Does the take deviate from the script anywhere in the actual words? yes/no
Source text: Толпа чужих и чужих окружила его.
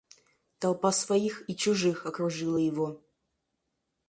yes